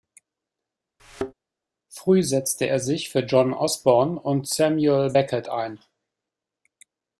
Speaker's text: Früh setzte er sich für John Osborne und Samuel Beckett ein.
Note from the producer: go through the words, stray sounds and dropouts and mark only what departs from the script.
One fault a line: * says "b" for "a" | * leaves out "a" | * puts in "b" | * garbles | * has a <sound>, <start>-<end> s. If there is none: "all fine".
* has a thud, 1.0-1.3 s